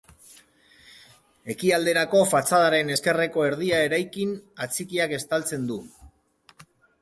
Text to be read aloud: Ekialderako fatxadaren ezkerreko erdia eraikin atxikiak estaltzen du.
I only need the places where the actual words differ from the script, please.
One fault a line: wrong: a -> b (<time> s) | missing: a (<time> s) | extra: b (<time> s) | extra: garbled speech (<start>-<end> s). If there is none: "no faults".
no faults